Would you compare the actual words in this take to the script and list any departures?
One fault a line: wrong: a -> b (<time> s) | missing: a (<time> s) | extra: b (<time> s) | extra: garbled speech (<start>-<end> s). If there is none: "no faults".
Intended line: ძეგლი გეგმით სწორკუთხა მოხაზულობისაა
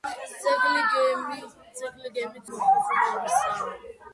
missing: სწორკუთხა (2.5 s)